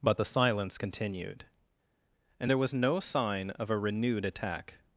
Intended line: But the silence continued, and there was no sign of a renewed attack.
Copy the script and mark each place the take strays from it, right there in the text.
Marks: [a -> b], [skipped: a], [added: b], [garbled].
But the silence continued, and there was no sign of a renewed attack.